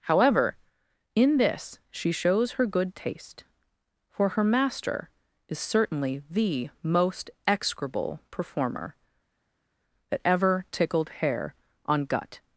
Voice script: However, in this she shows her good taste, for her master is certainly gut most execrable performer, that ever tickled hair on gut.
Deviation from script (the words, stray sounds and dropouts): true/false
true